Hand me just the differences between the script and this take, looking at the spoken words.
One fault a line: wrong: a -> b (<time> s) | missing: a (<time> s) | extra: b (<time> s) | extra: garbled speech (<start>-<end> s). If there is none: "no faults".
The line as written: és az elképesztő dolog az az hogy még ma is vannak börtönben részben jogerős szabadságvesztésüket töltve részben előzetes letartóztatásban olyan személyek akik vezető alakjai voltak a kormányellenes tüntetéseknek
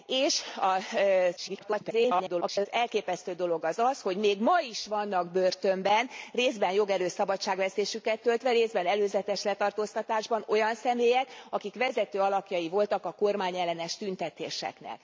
extra: garbled speech (1.4-2.7 s)